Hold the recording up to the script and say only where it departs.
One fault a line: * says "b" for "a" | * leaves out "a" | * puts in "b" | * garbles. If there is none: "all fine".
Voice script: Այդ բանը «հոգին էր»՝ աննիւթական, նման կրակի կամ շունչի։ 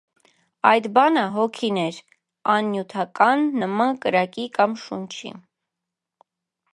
all fine